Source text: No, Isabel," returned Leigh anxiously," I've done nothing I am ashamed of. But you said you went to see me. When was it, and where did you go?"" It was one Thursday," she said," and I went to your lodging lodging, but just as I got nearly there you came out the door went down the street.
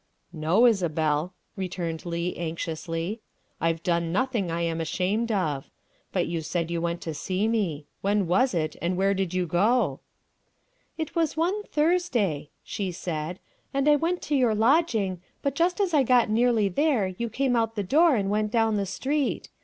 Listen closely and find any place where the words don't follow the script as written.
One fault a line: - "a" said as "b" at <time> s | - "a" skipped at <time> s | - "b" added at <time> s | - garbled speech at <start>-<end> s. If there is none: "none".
- "lodging" skipped at 15.2 s
- "and" added at 18.1 s